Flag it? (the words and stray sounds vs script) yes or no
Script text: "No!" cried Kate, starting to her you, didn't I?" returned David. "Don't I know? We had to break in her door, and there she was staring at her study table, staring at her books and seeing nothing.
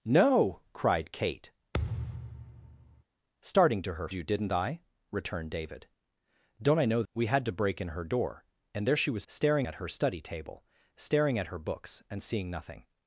yes